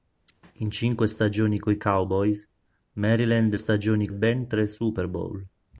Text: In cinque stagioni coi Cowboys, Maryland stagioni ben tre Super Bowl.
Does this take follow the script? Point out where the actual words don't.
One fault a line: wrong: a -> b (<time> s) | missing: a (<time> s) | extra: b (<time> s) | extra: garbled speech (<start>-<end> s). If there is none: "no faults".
no faults